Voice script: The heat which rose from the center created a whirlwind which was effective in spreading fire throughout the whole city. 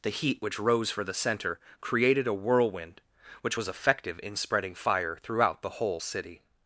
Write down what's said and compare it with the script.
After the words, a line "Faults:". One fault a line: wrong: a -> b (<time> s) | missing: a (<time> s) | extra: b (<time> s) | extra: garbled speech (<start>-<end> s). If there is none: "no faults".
The heat which rose for the center created a whirlwind which was effective in spreading fire throughout the whole city.
Faults:
wrong: from -> for (0.9 s)